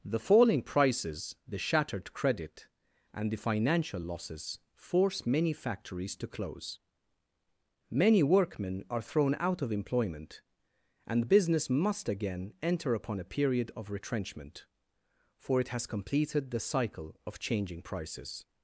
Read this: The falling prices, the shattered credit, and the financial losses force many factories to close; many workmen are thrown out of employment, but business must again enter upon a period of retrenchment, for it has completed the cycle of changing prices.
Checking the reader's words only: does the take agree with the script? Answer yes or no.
no